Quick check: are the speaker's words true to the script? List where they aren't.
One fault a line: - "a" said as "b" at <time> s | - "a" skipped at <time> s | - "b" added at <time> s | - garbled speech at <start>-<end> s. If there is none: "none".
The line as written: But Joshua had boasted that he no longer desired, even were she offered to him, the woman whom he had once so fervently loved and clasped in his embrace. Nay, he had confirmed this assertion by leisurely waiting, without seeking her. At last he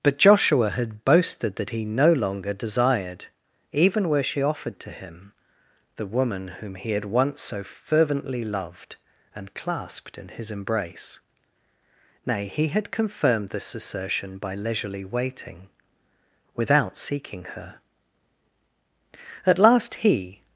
none